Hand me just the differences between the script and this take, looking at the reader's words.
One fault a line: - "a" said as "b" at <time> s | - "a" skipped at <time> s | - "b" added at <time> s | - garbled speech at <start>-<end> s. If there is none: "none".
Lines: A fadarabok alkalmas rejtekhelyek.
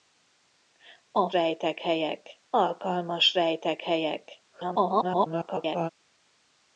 - "fadarabok" said as "rejtekhelyek" at 1.3 s
- garbled speech at 4.5-5.9 s